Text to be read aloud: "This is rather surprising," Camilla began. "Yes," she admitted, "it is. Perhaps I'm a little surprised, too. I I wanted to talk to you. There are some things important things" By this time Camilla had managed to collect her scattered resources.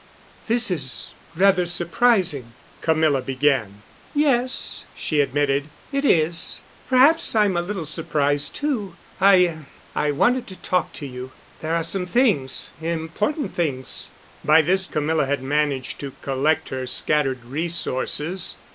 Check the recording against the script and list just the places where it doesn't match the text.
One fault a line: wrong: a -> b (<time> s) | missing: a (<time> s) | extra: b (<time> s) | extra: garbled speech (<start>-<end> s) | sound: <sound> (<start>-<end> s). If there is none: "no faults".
missing: time (14.9 s)